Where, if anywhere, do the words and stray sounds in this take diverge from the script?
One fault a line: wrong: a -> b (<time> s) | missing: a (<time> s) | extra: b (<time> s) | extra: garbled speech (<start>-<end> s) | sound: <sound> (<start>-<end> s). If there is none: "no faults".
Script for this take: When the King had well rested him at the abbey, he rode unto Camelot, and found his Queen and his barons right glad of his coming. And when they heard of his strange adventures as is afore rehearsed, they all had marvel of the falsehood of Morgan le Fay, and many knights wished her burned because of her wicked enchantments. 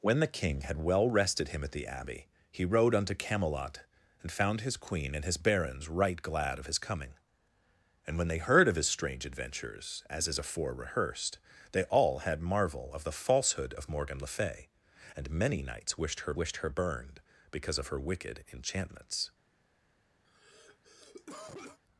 extra: wished her (16.3 s)
sound: cough (20.2-21.8 s)